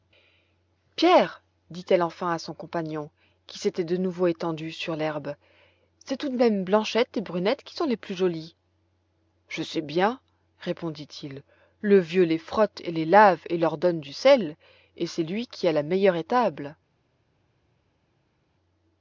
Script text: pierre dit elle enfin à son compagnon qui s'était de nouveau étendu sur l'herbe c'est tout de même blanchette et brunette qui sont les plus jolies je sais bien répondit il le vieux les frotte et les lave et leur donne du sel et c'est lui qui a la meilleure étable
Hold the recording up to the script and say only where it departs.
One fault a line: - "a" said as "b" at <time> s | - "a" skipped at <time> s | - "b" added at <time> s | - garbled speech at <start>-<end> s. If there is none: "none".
none